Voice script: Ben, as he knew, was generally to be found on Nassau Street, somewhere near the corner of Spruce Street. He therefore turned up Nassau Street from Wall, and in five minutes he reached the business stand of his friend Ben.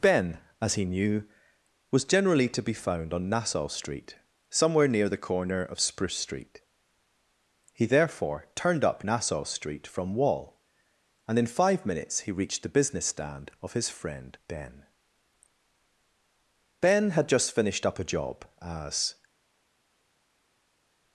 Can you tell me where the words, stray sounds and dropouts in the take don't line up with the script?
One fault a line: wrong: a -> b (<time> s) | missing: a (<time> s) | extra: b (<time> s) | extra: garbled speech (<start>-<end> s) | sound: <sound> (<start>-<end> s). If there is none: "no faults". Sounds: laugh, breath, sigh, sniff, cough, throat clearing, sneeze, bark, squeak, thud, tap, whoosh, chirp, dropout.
extra: Ben had just finished up a job as (16.8 s)